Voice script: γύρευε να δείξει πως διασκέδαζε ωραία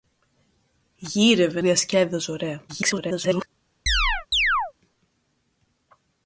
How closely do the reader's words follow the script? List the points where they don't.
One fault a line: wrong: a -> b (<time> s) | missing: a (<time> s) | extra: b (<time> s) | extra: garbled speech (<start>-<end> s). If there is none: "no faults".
missing: να δείξει πως (1.6 s)
extra: garbled speech (2.7-3.5 s)